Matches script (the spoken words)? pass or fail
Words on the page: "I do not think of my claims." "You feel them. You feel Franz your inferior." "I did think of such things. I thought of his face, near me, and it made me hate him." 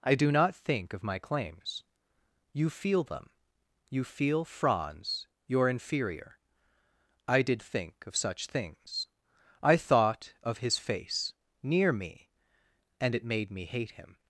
pass